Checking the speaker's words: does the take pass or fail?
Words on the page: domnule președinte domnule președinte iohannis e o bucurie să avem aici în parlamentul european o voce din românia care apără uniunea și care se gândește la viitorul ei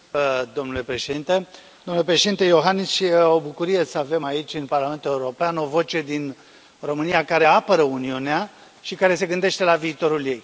pass